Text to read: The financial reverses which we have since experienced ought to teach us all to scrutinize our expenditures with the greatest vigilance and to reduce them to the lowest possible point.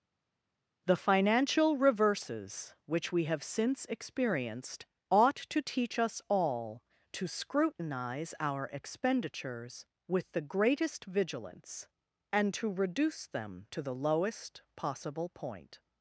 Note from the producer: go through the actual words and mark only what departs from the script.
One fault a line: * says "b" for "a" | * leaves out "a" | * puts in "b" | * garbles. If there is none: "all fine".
all fine